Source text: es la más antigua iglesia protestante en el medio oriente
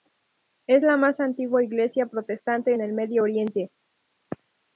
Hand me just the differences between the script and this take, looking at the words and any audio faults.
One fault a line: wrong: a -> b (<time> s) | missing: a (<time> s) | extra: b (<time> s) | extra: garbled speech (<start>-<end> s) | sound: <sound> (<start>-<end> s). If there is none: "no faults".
no faults